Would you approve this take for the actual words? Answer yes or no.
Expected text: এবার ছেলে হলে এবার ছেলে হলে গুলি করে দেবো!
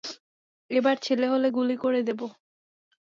no